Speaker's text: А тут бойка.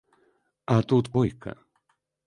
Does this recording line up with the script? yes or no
yes